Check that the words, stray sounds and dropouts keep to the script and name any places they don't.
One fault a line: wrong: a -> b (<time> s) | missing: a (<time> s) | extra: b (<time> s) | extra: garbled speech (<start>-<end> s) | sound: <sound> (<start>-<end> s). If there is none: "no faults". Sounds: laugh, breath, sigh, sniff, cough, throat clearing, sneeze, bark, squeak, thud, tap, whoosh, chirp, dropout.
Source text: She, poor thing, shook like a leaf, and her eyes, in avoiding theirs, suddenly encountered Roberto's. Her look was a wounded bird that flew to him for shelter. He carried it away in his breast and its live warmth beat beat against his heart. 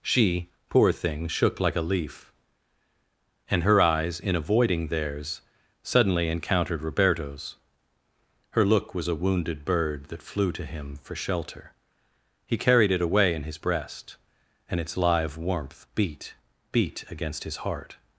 no faults